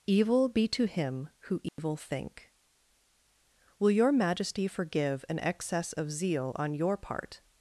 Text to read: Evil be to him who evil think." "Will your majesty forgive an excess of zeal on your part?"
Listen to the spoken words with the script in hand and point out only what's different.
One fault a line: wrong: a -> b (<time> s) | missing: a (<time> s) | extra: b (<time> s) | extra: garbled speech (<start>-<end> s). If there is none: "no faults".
no faults